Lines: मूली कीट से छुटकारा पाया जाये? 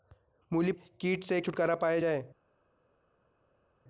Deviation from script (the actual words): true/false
false